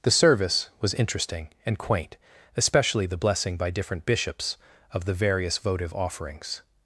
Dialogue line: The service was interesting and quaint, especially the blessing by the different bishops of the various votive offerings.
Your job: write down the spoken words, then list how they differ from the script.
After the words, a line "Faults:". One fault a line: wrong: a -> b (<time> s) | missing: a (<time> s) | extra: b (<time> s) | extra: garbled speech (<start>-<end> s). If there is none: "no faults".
The service was interesting and quaint, especially the blessing by different bishops of the various votive offerings.
Faults:
missing: the (3.7 s)